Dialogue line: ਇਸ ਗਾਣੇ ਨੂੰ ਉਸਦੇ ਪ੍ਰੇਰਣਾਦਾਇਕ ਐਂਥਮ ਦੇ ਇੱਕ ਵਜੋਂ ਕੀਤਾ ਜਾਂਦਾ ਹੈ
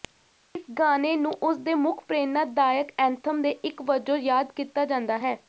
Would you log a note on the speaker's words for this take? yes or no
yes